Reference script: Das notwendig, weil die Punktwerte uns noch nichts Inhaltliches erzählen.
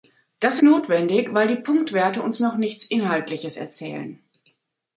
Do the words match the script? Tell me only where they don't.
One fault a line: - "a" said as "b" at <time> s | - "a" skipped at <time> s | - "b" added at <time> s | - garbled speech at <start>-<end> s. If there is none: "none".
none